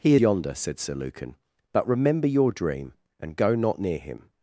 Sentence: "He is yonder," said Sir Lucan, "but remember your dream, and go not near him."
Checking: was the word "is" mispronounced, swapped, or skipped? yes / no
yes